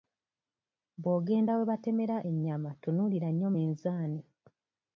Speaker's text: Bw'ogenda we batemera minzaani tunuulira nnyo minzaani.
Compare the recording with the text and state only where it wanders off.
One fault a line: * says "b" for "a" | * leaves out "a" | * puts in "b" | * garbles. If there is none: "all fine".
* says "ennyama" for "minzaani"